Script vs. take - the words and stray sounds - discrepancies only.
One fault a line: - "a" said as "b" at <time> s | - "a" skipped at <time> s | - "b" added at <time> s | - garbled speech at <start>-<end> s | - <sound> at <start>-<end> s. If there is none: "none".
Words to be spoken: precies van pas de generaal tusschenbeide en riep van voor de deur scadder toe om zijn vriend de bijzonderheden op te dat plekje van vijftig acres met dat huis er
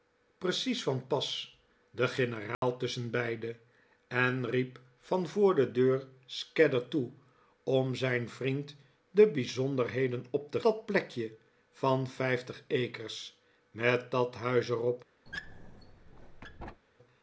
- dropout at 2.5-2.6 s
- squeak at 15.3-16.8 s